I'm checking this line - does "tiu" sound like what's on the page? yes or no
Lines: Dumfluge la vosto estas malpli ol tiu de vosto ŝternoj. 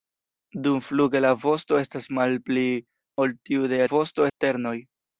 yes